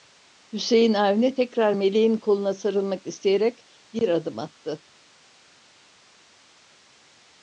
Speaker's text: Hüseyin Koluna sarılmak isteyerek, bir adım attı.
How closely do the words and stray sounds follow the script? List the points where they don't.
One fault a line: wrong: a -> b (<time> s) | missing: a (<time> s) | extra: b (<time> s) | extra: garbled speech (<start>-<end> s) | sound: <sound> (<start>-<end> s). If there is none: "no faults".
extra: Avni tekrar Meleğin (0.9 s)